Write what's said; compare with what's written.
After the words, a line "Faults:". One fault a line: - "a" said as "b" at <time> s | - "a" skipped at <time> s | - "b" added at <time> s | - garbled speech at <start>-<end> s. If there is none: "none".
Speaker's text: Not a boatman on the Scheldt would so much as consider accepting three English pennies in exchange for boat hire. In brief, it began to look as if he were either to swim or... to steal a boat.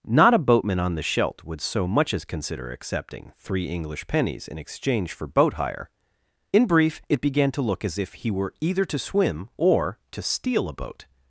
Not a boatman on the Scheldt would so much as consider accepting three English pennies in exchange for boat hire. In brief, it began to look as if he were either to swim or... to steal a boat.
Faults:
none